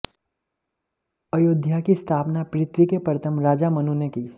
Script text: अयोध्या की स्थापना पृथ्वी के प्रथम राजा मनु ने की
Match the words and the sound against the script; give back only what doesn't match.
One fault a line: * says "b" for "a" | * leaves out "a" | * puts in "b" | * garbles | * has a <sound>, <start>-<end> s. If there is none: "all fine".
all fine